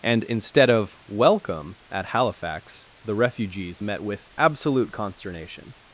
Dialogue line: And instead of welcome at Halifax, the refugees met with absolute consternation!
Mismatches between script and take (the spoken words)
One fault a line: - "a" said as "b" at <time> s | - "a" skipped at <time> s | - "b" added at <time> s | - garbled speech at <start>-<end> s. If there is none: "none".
none